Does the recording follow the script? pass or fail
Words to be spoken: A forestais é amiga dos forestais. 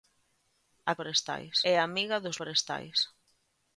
pass